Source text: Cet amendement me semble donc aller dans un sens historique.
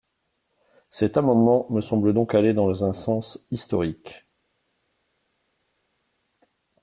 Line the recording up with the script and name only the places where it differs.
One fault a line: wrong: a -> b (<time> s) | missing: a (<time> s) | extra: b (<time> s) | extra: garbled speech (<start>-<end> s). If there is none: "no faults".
no faults